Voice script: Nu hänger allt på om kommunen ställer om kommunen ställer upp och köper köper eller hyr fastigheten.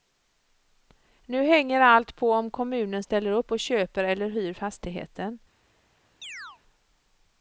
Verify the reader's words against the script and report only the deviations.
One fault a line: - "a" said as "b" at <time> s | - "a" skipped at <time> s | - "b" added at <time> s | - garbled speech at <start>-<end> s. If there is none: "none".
- "om kommunen ställer" skipped at 3.3 s
- "köper" skipped at 4.0 s